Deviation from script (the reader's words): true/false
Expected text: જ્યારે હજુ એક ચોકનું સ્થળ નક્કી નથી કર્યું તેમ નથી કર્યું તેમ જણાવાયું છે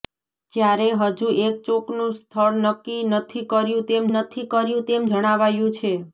false